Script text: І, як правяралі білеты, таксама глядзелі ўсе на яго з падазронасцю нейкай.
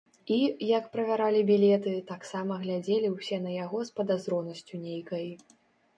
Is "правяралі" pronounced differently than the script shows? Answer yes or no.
no